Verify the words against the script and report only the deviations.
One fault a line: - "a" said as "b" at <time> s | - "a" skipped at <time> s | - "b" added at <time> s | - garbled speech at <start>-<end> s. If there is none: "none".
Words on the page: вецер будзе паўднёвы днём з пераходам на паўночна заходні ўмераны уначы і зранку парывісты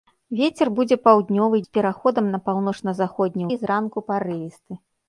- "днём" skipped at 1.6 s
- "ўмераны уначы" skipped at 3.4 s